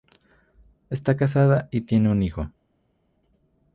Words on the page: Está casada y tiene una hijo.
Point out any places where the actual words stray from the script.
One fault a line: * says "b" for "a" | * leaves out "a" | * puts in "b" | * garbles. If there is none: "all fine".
* says "un" for "una"